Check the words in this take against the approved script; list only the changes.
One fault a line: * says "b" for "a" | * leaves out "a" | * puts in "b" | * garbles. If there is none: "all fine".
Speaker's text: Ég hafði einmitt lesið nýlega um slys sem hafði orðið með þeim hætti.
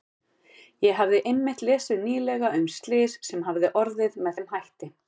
all fine